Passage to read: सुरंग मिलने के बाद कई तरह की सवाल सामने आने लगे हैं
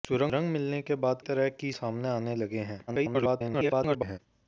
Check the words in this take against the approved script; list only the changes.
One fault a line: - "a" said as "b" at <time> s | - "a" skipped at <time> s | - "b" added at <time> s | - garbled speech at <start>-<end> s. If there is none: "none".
- "कई" skipped at 1.2 s
- "सवाल" skipped at 1.7 s
- garbled speech at 2.9-4.2 s